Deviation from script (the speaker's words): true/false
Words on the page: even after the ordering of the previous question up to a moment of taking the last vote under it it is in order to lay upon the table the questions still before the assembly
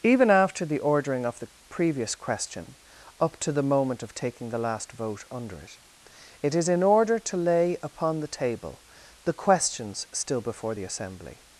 true